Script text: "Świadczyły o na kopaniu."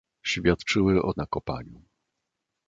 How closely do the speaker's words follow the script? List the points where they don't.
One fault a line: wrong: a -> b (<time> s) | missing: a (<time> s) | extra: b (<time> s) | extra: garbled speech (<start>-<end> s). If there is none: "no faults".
no faults